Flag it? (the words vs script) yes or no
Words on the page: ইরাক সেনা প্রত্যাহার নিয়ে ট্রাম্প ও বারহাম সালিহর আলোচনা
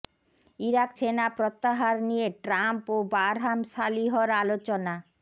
no